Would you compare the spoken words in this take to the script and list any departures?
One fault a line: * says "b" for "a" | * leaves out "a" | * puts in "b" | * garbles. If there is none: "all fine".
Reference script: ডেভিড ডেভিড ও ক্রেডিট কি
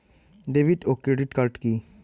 * leaves out "ডেভিড"
* puts in "কার্ড"